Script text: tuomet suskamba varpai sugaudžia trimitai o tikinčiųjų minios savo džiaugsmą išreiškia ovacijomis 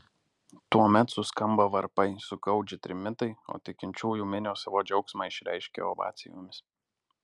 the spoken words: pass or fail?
pass